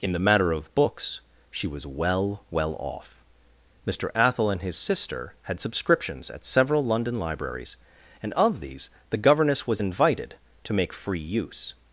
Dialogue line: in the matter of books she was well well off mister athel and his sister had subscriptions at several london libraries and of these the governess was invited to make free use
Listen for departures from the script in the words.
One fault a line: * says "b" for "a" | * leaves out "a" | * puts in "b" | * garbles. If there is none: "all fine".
all fine